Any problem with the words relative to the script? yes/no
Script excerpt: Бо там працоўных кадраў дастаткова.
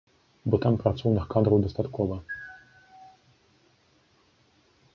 no